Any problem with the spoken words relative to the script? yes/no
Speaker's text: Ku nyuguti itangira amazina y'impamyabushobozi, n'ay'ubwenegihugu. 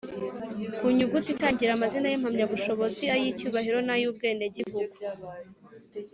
yes